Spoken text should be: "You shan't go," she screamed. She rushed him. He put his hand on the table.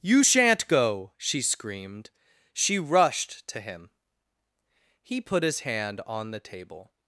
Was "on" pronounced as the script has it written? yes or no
yes